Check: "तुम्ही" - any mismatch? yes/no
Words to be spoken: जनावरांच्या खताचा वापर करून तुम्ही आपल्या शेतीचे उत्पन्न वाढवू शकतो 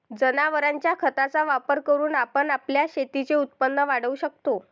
yes